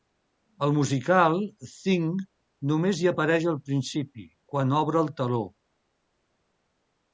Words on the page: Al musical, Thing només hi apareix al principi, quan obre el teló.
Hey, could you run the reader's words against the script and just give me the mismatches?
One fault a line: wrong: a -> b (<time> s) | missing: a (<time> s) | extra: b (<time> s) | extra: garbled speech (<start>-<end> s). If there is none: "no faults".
no faults